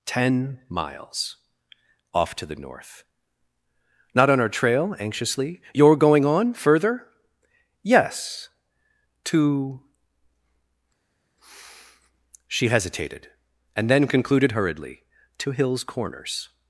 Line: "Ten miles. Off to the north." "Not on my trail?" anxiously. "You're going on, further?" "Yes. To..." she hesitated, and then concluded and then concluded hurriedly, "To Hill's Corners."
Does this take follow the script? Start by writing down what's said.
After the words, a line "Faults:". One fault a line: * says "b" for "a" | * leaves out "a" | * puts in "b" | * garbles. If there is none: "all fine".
"Ten miles. Off to the north." "Not on our trail?" anxiously. "You're going on, further?" "Yes. To..." she hesitated, and then concluded hurriedly, "To Hill's Corners."
Faults:
* says "our" for "my"
* leaves out "and then concluded"